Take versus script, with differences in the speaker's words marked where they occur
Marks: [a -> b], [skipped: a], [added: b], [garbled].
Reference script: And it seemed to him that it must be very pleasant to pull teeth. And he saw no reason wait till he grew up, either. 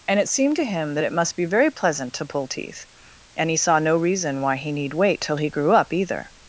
And it seemed to him that it must be very pleasant to pull teeth. And he saw no reason [added: why he need] wait till he grew up, either.